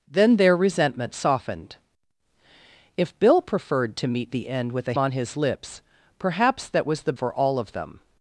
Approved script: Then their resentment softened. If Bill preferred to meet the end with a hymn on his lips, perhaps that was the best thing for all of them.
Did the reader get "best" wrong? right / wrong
wrong